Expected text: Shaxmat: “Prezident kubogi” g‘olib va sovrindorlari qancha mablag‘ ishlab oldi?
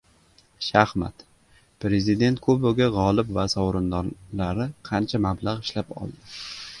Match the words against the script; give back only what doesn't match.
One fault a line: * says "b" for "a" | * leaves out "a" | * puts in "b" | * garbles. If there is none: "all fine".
all fine